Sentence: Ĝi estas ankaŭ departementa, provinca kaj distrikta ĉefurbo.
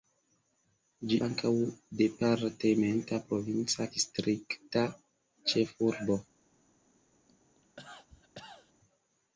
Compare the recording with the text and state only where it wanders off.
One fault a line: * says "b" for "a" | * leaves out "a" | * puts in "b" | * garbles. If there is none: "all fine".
* leaves out "estas"
* leaves out "kaj"